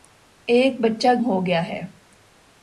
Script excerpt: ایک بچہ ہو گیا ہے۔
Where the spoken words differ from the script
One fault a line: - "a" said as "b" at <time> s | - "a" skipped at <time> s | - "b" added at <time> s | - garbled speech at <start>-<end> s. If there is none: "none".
none